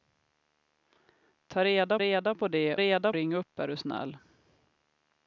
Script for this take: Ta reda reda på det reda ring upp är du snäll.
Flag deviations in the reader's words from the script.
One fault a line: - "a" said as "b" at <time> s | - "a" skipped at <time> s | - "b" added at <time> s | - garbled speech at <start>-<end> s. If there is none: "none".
none